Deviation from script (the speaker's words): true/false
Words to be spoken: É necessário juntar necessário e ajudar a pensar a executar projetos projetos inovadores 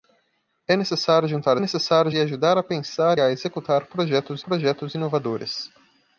false